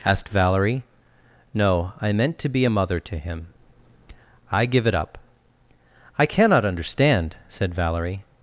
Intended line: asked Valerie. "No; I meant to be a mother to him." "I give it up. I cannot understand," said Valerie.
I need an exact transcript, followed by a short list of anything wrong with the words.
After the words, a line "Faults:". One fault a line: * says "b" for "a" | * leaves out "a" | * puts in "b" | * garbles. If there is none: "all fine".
asked Valerie. "No; I meant to be a mother to him." "I give it up. I cannot understand," said Valerie.
Faults:
all fine